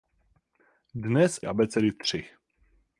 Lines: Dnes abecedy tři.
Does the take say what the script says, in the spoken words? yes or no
yes